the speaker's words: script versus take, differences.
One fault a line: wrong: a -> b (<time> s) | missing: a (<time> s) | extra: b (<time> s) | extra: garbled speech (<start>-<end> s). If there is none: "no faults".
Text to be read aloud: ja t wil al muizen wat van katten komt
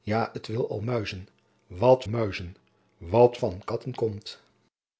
extra: muizen wat (2.1 s)